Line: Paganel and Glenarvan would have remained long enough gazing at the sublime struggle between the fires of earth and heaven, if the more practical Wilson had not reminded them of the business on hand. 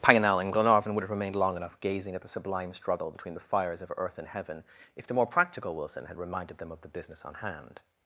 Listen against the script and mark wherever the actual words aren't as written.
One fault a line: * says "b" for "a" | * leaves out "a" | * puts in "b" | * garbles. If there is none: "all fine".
* leaves out "not"